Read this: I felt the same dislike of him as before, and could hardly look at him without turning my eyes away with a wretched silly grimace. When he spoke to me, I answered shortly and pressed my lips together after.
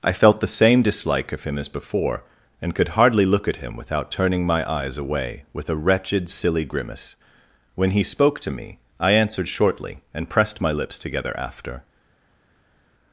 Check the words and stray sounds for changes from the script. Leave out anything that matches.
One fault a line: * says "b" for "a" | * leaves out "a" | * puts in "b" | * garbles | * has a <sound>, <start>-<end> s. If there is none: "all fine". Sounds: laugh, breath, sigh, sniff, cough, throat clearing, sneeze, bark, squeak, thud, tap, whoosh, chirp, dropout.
all fine